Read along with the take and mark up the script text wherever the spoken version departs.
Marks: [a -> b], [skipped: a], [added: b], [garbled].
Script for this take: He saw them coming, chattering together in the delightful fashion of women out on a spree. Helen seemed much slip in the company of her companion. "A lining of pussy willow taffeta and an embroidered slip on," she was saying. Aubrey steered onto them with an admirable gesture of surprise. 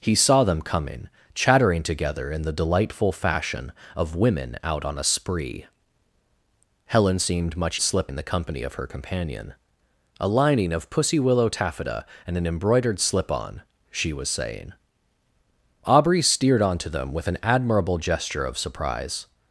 He saw them coming, chattering together in the delightful fashion of women out on a spree. Helen seemed much slip in the company of her companion. "A lining of pussy willow taffeta and an embroidered slip on," she was saying. Aubrey steered onto them with an admirable gesture of surprise.